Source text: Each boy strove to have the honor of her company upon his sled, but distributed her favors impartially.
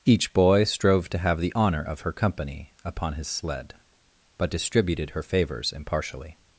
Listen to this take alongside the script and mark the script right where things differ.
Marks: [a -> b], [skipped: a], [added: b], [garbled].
Each boy strove to have the honor of her company upon his sled, but distributed her favors impartially.